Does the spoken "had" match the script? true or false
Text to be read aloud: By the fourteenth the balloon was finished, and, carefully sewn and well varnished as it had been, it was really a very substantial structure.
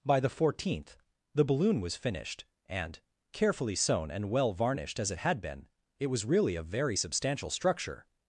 true